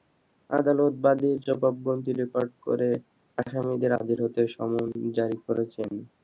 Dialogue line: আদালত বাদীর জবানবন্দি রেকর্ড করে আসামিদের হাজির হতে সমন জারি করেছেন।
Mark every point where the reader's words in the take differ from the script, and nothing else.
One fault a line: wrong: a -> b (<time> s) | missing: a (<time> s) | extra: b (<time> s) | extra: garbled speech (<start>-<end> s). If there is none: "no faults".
no faults